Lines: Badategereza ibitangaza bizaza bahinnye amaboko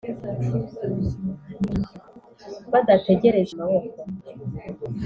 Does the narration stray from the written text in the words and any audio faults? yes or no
yes